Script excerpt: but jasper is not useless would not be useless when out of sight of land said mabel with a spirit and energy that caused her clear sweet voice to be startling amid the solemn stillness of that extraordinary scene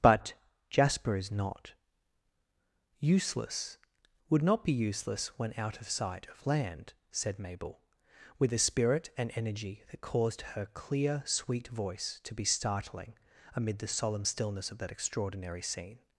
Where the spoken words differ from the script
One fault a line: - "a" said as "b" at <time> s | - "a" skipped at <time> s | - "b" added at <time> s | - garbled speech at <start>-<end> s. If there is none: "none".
none